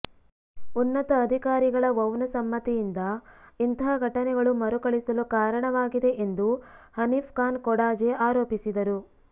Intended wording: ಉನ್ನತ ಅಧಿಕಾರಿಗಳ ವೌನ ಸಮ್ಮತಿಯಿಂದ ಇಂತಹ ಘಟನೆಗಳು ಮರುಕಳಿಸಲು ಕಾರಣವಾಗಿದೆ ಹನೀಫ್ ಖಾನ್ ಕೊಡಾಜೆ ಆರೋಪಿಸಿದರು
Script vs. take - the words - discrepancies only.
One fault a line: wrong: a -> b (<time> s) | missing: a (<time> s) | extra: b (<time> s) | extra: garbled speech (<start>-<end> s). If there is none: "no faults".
extra: ಎಂದು (6.2 s)